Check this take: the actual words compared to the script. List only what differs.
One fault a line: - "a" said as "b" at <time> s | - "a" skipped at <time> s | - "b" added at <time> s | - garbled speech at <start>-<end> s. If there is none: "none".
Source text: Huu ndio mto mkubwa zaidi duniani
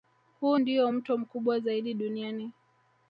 none